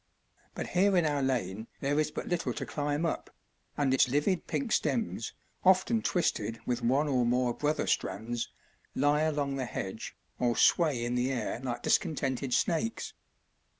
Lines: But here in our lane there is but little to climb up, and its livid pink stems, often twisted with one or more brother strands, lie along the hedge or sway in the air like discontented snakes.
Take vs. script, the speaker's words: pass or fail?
pass